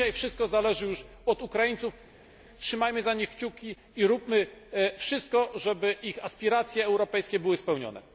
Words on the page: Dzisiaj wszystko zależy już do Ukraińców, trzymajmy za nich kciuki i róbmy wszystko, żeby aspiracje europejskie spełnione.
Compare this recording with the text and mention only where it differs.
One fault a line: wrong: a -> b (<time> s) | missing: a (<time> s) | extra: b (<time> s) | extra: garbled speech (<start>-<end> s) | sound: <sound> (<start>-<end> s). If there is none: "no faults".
wrong: do -> od (1.2 s)
extra: ich (6.0 s)
extra: były (7.4 s)